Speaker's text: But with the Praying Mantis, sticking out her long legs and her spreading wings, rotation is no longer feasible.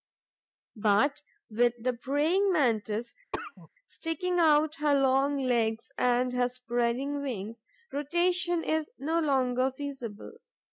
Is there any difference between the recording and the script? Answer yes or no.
no